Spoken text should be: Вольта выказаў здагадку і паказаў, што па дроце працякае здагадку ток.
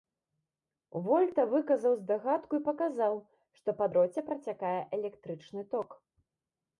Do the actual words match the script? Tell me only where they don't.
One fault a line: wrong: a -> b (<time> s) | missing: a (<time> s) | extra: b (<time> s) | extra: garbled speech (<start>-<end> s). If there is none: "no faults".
wrong: здагадку -> электрычны (5.0 s)